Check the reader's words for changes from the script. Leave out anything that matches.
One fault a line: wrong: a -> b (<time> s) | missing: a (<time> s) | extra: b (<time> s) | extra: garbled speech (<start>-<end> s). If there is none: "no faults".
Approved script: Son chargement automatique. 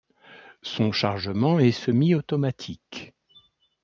extra: est semi (1.6 s)